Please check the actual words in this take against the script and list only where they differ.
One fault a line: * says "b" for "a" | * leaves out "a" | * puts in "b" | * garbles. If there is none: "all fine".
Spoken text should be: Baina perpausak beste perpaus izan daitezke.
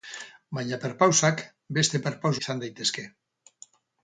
all fine